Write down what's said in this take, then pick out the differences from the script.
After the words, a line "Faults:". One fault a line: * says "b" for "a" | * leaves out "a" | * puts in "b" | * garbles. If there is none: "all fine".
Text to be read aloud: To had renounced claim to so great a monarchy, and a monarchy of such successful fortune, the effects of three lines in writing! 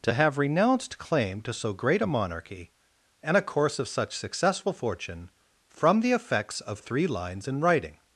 To have renounced claim to so great a monarchy, and a course of such successful fortune, from the effects of three lines in writing!
Faults:
* says "have" for "had"
* says "course" for "monarchy"
* puts in "from"